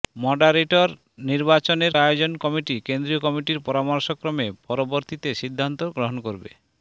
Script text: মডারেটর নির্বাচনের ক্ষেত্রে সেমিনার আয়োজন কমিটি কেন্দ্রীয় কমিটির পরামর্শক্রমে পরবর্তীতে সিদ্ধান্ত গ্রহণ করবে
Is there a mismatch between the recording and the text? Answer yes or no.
yes